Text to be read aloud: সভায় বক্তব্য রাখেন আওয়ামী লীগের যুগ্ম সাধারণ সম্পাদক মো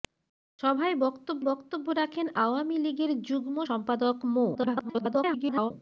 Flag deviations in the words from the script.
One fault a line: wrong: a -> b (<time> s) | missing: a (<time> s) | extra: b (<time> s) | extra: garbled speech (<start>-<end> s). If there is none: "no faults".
extra: বক্তব্য (1.4 s)
missing: সাধারণ (3.6 s)
extra: garbled speech (4.5-5.7 s)